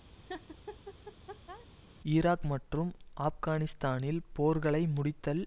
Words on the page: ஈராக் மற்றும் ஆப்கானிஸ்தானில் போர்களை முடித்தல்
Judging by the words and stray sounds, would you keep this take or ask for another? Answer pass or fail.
fail